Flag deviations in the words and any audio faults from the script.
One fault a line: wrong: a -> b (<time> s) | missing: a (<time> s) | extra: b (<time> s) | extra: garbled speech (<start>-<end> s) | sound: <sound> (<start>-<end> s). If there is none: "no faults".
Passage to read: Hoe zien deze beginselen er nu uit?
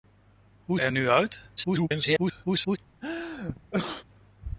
missing: zien deze beginselen (0.8 s)
extra: garbled speech (1.6-2.8 s)
sound: sneeze (3.0-4.0 s)